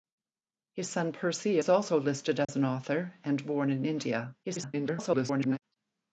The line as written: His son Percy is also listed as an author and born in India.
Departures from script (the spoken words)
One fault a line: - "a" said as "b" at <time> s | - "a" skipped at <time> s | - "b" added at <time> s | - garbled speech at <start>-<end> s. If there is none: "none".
- garbled speech at 4.4-5.6 s